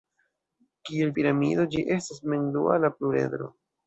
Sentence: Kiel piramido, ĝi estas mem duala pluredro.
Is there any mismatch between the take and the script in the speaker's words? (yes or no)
no